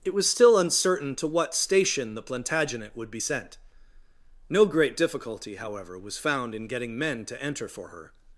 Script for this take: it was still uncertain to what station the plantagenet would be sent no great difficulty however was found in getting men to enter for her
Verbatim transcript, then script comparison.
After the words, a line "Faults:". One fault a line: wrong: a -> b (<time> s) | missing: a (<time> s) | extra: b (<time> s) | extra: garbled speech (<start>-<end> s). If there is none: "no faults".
it was still uncertain to what station the plantagenet would be sent no great difficulty however was found in getting men to enter for her
Faults:
no faults